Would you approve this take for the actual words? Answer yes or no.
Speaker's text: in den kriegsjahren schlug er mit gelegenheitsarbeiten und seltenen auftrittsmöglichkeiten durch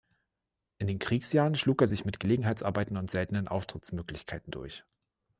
no